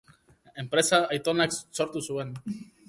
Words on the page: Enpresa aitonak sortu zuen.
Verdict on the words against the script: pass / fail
pass